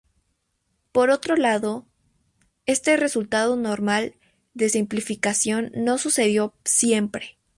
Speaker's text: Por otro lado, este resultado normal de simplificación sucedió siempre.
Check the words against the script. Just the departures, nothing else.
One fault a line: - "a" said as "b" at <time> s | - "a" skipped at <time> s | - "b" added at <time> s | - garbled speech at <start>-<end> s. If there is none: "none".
- "no" added at 5.8 s